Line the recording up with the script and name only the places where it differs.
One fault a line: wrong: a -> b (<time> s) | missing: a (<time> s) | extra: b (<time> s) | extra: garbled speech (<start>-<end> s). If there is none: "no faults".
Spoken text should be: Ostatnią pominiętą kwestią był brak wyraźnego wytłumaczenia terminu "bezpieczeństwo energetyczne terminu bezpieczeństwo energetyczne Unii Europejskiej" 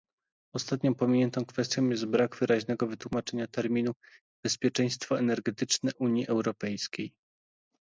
wrong: był -> jest (1.9 s)
missing: terminu bezpieczeństwo energetyczne (5.9 s)